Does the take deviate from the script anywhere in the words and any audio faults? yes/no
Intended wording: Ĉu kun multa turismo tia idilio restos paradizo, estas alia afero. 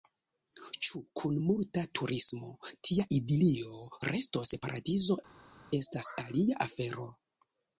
no